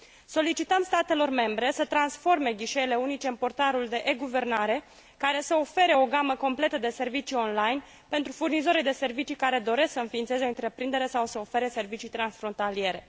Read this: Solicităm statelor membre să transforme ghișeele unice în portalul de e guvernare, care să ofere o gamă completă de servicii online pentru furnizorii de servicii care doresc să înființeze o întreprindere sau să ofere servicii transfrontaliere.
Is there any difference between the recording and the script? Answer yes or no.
no